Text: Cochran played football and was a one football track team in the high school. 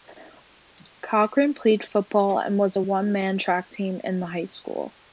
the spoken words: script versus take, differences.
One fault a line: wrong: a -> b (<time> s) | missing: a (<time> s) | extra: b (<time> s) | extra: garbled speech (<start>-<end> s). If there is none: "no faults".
wrong: football -> man (3.1 s)